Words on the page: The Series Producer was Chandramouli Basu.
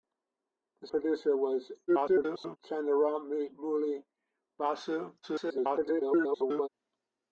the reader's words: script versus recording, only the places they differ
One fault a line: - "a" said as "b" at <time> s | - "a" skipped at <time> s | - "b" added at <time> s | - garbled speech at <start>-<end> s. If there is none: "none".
- "Series" skipped at 0.9 s
- garbled speech at 1.9-2.6 s
- garbled speech at 5.2-6.7 s